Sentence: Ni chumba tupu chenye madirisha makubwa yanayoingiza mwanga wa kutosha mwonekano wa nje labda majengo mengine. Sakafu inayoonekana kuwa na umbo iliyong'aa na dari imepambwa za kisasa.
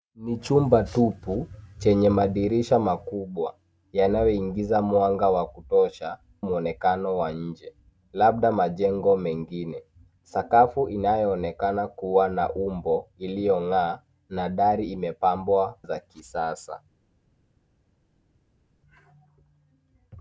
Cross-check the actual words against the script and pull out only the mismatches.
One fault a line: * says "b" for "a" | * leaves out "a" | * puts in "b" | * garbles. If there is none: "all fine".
all fine